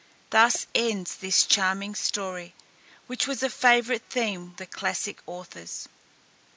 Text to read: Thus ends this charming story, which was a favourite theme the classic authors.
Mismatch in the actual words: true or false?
false